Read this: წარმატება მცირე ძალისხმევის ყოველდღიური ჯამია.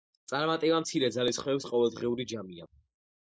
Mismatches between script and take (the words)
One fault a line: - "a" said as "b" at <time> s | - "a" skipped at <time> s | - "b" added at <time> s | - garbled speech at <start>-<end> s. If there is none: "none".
none